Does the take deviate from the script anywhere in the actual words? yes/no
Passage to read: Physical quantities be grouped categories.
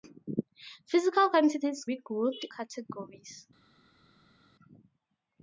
no